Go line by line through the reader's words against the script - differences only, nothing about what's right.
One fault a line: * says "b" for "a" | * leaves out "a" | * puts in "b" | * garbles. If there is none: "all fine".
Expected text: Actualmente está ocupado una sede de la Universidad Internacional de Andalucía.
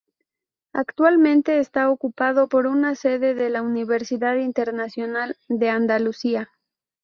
* puts in "por"